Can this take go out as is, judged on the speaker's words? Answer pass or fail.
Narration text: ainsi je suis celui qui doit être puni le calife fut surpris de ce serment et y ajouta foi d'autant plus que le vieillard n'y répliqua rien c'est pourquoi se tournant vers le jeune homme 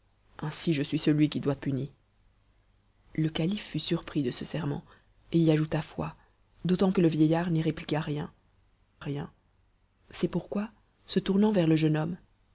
fail